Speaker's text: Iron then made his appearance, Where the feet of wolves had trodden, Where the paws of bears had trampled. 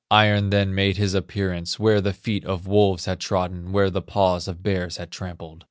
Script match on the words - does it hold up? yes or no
yes